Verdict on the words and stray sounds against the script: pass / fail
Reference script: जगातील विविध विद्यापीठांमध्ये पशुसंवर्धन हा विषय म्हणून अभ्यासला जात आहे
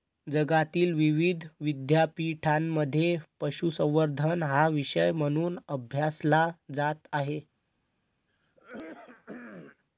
fail